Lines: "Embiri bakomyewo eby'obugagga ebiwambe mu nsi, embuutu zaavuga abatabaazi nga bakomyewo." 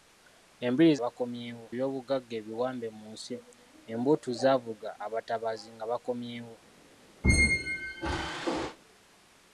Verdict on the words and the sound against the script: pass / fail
fail